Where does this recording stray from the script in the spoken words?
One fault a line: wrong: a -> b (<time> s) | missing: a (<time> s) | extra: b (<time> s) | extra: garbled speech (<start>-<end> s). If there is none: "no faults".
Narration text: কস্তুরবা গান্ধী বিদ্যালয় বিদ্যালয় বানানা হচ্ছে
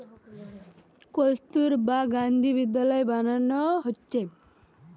missing: বিদ্যালয় (3.0 s)